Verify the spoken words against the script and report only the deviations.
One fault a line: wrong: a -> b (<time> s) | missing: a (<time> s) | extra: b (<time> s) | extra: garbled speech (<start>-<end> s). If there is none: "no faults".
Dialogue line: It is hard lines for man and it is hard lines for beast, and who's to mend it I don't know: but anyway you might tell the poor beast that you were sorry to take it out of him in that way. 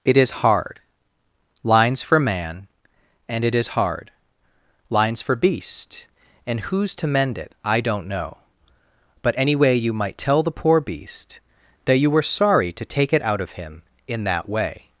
no faults